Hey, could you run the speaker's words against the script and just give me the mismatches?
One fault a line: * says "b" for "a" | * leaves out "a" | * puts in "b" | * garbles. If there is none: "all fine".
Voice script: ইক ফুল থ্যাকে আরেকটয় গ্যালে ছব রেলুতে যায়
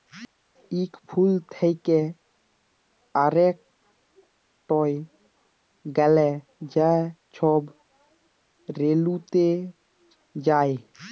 * puts in "যা"